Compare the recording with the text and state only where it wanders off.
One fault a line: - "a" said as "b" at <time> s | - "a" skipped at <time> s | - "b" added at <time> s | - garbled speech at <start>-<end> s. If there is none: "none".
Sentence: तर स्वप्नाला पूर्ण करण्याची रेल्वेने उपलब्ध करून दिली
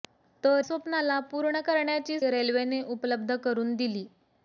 none